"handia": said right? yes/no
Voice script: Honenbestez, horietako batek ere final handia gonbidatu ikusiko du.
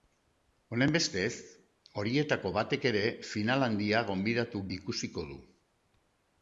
yes